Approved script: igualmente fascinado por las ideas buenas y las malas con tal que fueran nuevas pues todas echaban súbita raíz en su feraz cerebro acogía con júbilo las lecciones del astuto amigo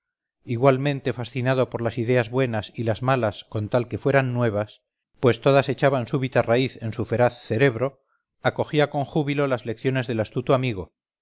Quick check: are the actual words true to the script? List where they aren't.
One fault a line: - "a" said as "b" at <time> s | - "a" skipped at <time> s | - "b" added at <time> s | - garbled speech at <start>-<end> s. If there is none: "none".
none